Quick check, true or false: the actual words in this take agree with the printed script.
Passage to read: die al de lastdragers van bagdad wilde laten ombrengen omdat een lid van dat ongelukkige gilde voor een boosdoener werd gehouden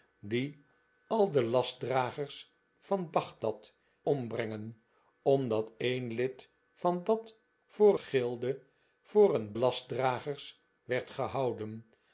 false